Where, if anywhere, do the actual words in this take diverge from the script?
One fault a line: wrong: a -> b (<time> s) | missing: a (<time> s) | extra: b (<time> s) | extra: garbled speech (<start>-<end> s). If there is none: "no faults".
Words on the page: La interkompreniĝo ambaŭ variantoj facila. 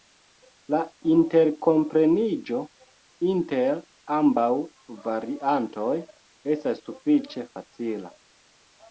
extra: inter (3.3 s)
extra: estas sufiĉe (6.5 s)